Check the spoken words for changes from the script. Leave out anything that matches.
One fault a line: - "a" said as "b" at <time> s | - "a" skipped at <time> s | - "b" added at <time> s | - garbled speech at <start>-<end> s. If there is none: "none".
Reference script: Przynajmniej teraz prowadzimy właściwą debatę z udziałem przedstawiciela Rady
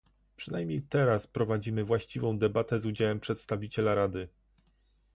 none